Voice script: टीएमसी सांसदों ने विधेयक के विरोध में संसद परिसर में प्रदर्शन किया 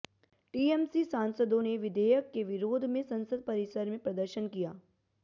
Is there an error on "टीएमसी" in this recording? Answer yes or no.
no